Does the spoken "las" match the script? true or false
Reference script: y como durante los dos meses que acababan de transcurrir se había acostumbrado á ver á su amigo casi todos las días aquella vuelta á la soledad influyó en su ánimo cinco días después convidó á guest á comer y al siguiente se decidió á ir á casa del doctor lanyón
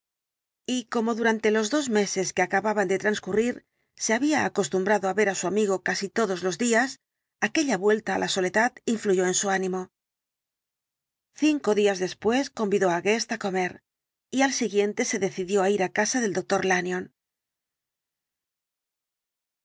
false